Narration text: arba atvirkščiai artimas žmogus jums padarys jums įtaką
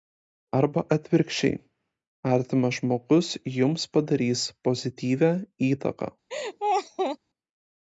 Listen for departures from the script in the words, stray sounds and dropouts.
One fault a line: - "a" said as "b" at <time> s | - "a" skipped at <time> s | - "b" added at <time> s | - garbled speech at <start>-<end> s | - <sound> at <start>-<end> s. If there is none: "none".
- "jums" said as "pozityvią" at 4.7 s
- laugh at 6.3-7.2 s